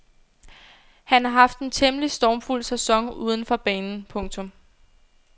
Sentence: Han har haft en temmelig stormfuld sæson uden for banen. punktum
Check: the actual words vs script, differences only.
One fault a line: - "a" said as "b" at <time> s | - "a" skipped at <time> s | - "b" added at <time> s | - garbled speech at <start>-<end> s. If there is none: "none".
none